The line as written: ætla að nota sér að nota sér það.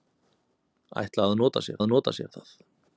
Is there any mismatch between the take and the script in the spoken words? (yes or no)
no